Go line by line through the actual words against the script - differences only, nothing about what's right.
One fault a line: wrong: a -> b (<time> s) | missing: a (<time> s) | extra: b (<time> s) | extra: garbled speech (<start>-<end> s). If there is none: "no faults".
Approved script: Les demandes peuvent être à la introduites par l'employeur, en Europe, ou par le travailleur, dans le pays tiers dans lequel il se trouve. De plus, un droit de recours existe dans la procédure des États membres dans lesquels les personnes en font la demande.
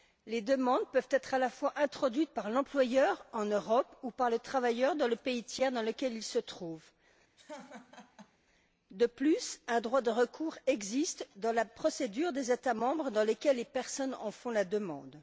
extra: fois (1.5 s)